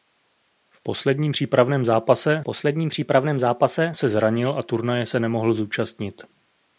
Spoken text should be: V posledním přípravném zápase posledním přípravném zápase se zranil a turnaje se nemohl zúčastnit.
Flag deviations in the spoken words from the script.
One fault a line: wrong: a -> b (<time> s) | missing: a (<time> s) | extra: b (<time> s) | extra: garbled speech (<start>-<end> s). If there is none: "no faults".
no faults